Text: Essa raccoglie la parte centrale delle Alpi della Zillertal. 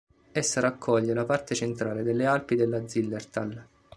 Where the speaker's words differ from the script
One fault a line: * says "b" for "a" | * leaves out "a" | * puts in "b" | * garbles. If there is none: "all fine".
all fine